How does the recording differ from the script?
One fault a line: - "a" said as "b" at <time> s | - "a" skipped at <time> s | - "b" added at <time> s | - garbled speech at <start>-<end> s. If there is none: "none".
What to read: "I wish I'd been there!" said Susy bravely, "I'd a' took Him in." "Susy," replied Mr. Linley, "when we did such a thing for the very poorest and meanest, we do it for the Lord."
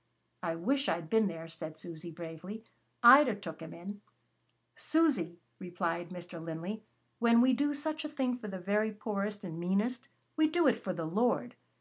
- "did" said as "do" at 7.5 s